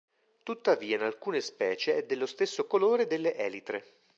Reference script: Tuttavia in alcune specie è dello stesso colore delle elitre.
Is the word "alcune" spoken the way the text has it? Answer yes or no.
yes